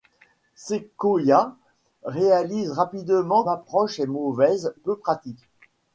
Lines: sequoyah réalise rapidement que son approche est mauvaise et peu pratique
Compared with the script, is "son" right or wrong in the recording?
wrong